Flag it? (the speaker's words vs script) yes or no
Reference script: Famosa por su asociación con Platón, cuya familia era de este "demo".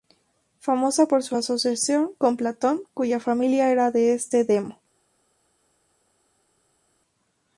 no